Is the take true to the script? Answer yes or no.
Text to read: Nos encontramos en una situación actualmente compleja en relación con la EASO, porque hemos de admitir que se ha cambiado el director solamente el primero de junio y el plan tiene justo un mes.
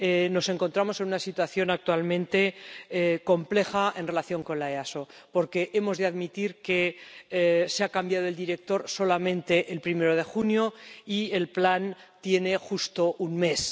yes